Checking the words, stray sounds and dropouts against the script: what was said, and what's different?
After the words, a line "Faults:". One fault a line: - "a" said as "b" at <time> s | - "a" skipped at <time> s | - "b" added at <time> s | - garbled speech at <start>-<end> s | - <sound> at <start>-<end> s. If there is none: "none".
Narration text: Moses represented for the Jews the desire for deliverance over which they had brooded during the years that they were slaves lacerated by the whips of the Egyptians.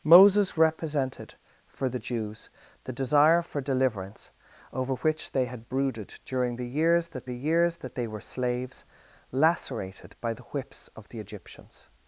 Moses represented for the Jews the desire for deliverance over which they had brooded during the years that the years that they were slaves lacerated by the whips of the Egyptians.
Faults:
- "the years that" added at 7.2 s